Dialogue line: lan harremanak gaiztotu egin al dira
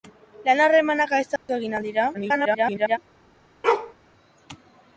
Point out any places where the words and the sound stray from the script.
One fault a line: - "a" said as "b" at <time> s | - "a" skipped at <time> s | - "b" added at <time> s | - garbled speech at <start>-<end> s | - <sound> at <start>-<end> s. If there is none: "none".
- dropout at 1.4-1.5 s
- garbled speech at 2.1-3.0 s
- bark at 3.6-3.9 s